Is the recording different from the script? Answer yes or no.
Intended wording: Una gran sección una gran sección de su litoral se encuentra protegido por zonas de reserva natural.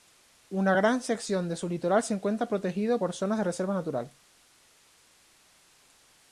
yes